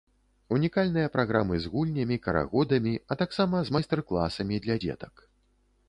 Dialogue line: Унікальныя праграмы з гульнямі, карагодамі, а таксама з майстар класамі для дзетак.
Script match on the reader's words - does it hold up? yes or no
yes